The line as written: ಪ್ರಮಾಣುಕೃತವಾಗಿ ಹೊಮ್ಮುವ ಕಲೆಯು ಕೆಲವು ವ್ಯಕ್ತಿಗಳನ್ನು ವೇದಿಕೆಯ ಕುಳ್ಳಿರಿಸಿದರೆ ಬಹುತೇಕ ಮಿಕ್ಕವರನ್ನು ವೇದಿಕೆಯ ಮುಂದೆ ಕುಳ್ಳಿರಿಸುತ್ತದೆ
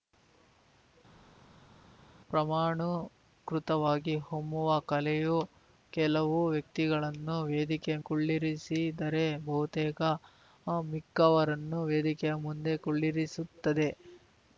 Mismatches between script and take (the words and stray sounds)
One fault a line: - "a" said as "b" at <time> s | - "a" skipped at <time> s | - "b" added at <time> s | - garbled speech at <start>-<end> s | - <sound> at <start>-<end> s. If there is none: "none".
none